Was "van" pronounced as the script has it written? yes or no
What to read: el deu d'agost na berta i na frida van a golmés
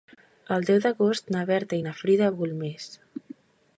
no